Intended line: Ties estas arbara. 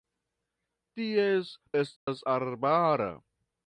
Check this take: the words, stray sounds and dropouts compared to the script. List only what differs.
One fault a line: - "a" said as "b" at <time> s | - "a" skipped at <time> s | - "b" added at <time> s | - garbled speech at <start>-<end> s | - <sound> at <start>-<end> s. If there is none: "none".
- dropout at 2.0-2.1 s